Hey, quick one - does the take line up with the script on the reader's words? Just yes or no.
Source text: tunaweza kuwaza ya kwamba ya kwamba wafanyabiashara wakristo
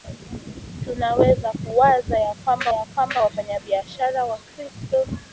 yes